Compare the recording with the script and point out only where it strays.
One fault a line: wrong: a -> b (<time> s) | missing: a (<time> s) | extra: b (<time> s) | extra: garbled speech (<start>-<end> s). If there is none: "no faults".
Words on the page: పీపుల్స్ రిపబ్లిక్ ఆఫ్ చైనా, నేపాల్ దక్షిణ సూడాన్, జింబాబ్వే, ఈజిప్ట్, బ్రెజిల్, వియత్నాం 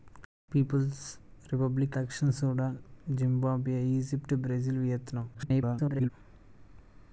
missing: ఆఫ్ చైనా నేపాల్ (2.0 s)
extra: garbled speech (5.3-6.1 s)